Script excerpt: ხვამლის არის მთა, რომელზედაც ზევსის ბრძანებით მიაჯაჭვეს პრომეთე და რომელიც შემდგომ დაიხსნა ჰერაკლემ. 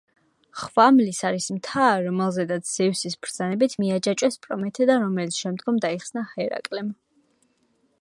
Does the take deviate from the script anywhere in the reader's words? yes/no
no